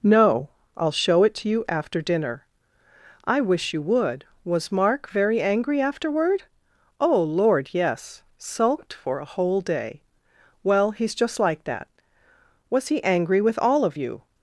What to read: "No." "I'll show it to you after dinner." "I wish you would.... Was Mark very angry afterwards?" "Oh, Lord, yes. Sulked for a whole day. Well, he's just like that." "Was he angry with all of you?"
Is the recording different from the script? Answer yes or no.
yes